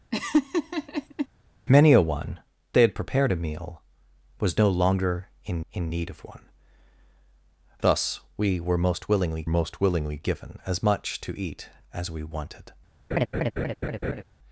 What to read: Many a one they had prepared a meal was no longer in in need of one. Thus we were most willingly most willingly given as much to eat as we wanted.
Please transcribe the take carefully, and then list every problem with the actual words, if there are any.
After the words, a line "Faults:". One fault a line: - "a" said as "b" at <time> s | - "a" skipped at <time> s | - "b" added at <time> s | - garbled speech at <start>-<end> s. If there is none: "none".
Many a one they had prepared a meal was no longer in in need of one. Thus we were most willingly most willingly given as much to eat as we wanted.
Faults:
none